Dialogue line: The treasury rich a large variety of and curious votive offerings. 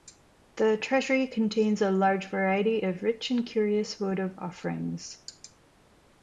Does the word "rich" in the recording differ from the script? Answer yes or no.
yes